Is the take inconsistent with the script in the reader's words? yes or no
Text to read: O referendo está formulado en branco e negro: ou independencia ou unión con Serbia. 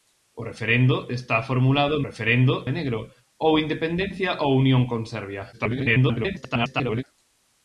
yes